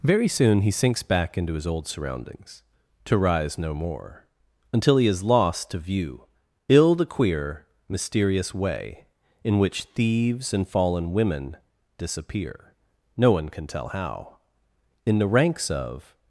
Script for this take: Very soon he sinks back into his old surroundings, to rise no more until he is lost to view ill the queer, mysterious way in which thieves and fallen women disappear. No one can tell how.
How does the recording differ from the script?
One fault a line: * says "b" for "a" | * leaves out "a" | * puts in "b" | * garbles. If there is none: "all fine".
* puts in "In the ranks of"